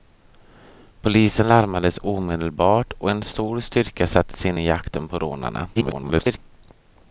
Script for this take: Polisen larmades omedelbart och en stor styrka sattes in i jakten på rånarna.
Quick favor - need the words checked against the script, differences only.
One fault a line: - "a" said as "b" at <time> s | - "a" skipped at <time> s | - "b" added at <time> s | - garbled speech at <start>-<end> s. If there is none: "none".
- garbled speech at 5.7-6.4 s